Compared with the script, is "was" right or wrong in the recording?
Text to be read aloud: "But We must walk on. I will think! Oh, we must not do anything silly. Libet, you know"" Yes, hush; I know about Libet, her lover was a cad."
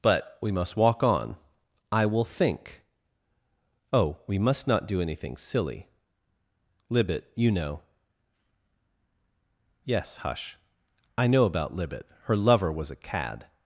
right